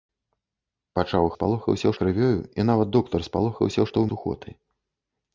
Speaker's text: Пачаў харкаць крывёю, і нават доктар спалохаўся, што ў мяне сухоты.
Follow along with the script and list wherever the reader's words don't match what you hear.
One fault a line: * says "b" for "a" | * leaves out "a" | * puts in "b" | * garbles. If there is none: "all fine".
* says "спалохаўся" for "харкаць"
* leaves out "мяне"